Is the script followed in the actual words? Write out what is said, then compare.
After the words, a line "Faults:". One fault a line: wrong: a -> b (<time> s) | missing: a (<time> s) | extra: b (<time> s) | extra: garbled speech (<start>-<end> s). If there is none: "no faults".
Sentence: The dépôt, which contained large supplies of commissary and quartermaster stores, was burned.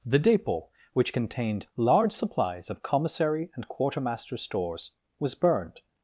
The dépôt, which contained large supplies of commissary and quartermaster stores, was burned.
Faults:
no faults